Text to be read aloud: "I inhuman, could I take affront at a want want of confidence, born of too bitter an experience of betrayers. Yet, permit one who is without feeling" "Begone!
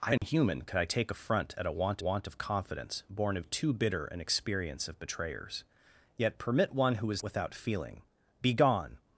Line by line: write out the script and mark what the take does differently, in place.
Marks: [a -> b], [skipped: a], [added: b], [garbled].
"I inhuman, could I take affront at a want want of confidence, born of too bitter an experience of betrayers. Yet, permit one who is without feeling" "Begone!